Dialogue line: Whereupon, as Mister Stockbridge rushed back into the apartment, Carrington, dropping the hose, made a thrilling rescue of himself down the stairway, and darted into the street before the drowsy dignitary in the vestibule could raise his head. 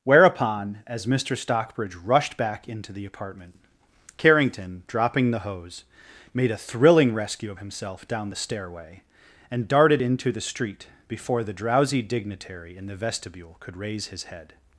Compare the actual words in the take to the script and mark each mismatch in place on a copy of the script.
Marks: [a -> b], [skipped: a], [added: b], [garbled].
Whereupon, as Mister Stockbridge rushed back into the apartment, Carrington, dropping the hose, made a thrilling rescue of himself down the stairway, and darted into the street before the drowsy dignitary in the vestibule could raise his head.